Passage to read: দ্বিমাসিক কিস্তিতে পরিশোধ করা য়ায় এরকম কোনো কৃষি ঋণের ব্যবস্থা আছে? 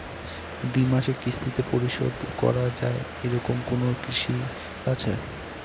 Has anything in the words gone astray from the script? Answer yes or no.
yes